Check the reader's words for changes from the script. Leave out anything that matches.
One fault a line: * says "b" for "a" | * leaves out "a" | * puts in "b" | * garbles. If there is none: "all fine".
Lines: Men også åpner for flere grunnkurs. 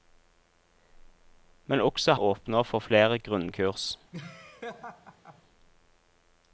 all fine